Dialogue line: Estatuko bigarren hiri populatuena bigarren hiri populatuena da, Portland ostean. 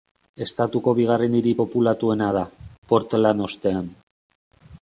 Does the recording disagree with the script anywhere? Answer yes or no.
yes